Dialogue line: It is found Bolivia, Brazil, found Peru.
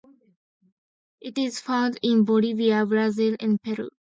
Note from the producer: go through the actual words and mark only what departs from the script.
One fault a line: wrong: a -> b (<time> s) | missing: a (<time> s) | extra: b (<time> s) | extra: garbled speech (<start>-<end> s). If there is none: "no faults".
extra: in (2.0 s)
wrong: found -> and (3.4 s)